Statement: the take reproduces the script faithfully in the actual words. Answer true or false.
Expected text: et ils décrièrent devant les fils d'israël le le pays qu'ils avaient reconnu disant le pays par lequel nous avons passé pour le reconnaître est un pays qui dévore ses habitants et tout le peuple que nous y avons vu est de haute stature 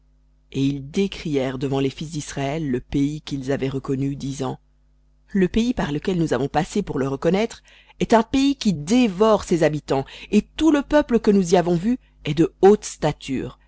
false